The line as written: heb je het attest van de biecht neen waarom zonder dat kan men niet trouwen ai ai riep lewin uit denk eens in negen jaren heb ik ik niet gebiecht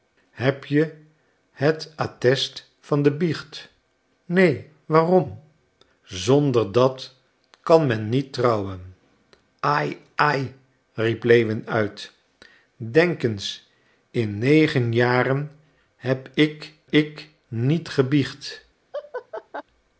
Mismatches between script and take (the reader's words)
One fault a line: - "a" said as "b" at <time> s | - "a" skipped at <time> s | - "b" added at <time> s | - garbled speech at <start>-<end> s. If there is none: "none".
none